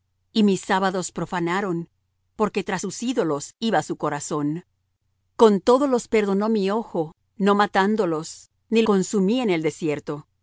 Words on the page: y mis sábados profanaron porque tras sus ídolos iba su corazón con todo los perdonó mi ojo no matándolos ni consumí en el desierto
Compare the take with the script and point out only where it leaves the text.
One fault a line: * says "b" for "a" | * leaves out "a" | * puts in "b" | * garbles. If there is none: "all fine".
all fine